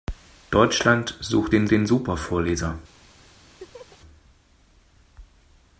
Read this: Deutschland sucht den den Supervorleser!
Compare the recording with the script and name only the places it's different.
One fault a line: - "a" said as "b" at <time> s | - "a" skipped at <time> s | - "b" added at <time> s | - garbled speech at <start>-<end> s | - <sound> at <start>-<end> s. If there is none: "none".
- laugh at 3.6-4.0 s